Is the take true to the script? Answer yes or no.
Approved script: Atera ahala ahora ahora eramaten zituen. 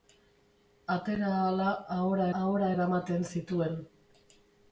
yes